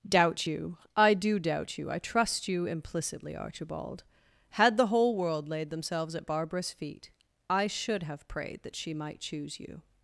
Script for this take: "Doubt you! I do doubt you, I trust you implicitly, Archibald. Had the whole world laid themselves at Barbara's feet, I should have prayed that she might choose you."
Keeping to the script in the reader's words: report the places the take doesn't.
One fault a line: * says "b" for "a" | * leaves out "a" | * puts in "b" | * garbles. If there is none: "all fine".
all fine